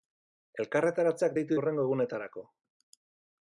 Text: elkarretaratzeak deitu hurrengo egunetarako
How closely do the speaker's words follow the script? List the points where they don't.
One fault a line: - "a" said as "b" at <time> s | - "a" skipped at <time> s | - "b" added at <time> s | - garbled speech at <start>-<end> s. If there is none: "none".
none